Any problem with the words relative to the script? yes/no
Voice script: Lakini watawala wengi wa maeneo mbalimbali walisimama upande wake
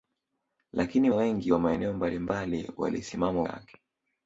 yes